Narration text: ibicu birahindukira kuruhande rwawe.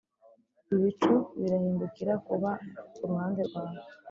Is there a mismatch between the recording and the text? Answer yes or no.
yes